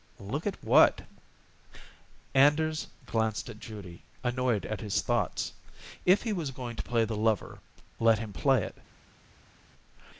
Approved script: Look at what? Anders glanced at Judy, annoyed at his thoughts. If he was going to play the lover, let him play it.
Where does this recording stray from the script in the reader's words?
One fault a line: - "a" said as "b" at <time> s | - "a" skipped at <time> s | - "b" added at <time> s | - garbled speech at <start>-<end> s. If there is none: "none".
none